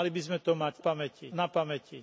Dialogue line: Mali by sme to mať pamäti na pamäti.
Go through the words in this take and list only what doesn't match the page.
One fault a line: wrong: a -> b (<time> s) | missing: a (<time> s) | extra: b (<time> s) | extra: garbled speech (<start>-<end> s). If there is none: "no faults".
no faults